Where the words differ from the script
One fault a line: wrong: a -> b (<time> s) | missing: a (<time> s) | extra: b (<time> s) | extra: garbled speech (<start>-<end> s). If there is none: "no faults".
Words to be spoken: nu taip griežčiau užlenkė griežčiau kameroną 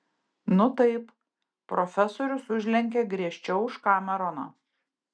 wrong: griežčiau -> profesorius (1.7 s)
extra: už (3.7 s)